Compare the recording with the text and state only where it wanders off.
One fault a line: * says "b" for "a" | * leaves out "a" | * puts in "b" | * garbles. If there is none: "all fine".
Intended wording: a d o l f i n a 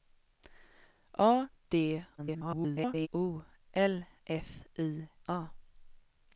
* garbles
* leaves out "n"